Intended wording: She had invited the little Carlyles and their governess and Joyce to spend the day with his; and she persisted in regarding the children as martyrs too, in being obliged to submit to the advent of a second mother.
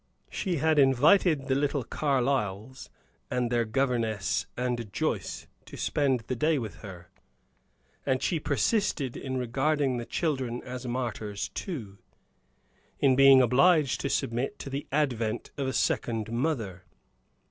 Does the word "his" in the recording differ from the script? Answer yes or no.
yes